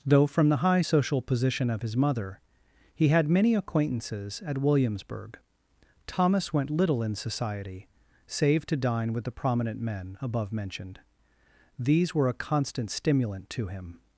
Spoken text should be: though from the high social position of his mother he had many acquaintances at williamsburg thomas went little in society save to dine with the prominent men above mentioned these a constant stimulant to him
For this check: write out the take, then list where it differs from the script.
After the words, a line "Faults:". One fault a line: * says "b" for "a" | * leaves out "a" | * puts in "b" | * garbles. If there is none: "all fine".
though from the high social position of his mother he had many acquaintances at williamsburg thomas went little in society save to dine with the prominent men above mentioned these were a constant stimulant to him
Faults:
* puts in "were"